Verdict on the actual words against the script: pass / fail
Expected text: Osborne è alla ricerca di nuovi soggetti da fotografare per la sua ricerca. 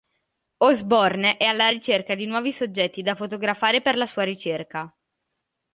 pass